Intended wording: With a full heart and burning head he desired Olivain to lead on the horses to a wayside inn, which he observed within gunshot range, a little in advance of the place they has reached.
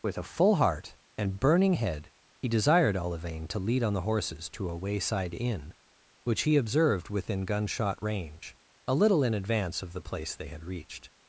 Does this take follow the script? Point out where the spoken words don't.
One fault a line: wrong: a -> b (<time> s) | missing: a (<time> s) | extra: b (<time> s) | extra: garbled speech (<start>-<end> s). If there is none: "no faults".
wrong: has -> had (10.5 s)